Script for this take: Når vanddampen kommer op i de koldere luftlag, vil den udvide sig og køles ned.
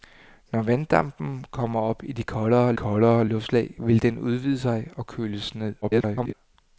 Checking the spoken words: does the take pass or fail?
fail